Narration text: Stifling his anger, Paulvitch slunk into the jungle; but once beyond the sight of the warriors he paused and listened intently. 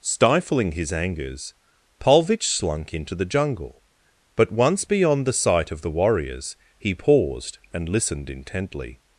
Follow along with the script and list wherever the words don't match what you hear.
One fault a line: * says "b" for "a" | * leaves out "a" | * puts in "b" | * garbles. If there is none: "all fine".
* says "angers" for "anger"